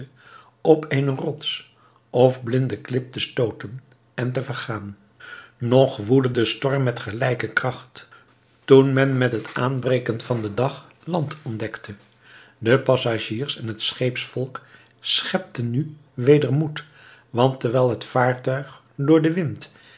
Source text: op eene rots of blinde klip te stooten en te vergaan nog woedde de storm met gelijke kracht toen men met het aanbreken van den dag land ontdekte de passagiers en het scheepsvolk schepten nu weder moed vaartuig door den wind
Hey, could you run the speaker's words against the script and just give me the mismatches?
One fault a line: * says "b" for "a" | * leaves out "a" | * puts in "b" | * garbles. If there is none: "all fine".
* puts in "want terwijl het"